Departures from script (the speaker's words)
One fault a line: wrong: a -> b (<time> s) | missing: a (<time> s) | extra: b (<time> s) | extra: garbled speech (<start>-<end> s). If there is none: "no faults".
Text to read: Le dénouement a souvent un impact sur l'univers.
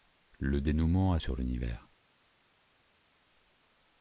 missing: souvent un impact (1.2 s)